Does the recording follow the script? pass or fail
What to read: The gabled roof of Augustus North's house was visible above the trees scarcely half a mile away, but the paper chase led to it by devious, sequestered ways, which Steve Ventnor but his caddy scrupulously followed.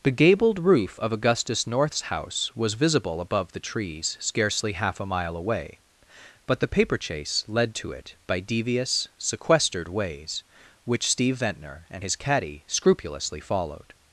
fail